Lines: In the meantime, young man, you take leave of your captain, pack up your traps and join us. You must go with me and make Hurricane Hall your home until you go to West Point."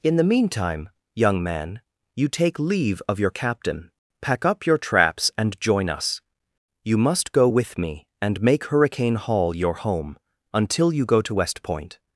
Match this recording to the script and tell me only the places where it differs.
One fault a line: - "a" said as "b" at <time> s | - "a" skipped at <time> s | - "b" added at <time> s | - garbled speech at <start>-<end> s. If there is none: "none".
none